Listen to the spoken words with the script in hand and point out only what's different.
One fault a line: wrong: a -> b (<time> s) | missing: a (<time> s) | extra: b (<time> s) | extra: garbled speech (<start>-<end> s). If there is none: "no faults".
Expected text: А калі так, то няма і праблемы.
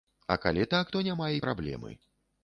no faults